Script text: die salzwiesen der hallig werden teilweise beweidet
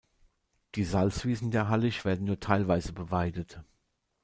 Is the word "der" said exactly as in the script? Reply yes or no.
yes